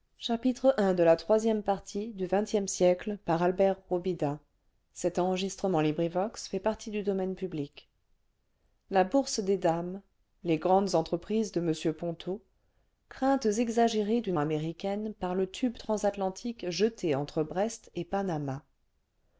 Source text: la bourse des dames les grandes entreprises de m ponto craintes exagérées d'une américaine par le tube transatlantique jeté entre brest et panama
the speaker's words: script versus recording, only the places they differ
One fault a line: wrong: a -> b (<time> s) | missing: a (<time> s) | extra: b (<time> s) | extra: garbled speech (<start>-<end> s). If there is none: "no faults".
no faults